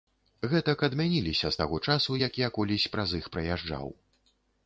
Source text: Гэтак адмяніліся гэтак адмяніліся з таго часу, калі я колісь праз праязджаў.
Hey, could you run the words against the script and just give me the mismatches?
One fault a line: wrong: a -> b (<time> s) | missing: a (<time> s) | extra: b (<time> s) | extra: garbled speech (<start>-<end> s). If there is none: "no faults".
missing: гэтак адмяніліся (1.5 s)
wrong: калі -> як (2.3 s)
extra: іх (3.2 s)